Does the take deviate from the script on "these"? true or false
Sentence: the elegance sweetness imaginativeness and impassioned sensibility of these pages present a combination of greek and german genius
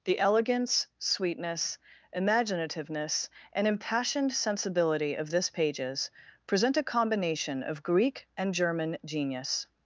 true